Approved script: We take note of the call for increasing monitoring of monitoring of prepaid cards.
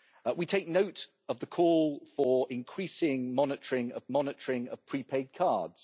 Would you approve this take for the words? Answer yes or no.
yes